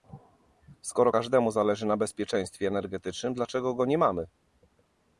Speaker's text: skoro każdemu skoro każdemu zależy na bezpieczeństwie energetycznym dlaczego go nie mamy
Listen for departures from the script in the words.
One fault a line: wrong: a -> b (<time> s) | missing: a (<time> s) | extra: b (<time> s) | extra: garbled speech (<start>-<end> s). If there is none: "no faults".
missing: skoro każdemu (1.5 s)